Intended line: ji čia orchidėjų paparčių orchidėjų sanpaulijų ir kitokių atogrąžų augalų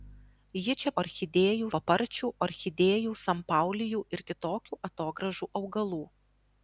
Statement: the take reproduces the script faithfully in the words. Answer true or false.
true